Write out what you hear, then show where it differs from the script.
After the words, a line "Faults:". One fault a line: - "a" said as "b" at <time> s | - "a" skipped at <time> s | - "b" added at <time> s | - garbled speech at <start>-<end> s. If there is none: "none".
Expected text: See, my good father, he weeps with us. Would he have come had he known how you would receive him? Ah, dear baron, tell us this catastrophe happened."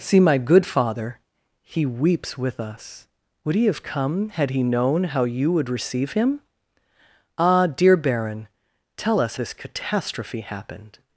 See, my good father, he weeps with us. Would he have come had he known how you would receive him? Ah, dear baron, tell us this catastrophe happened."
Faults:
none